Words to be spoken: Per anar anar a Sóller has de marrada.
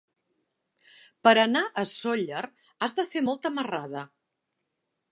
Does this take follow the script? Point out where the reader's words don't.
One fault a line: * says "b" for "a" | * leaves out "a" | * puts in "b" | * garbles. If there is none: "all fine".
* leaves out "anar"
* puts in "fer molta"